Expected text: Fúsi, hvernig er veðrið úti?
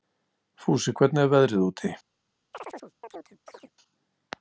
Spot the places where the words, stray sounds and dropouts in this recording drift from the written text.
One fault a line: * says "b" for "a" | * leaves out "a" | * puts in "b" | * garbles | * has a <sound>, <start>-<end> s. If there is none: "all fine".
* has a chirp, 2.5-3.7 s